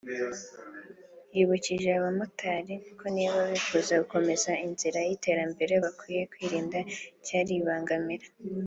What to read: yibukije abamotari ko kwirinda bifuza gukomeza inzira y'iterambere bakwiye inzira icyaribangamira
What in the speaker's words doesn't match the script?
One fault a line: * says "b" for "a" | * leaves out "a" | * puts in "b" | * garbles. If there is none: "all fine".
* says "niba" for "kwirinda"
* says "kwirinda" for "inzira"